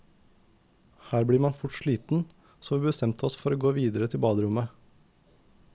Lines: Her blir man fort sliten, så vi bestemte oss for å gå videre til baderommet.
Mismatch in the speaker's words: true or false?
false